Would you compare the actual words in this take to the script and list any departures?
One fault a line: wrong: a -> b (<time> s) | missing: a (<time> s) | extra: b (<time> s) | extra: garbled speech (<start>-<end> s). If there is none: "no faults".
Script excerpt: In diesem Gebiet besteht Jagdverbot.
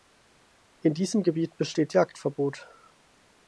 no faults